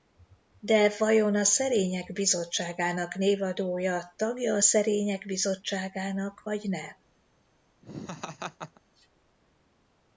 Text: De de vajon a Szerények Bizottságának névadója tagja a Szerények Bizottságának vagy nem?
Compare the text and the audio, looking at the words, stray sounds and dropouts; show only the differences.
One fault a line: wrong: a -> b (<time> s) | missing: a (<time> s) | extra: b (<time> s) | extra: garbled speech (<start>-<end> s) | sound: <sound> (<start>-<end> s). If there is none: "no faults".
missing: de (0.9 s)
sound: laugh (7.8-8.8 s)